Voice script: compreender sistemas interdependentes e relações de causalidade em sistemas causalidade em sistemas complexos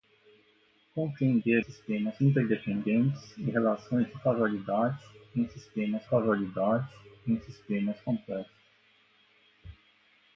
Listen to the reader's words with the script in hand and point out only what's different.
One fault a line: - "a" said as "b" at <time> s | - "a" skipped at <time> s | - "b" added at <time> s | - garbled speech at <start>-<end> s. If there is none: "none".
none